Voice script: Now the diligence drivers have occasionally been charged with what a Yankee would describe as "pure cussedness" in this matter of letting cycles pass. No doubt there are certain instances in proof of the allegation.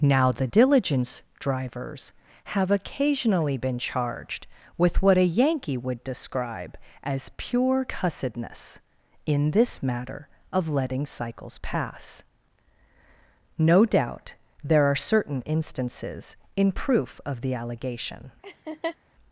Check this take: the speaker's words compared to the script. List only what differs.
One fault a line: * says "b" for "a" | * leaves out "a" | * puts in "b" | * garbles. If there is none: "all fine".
all fine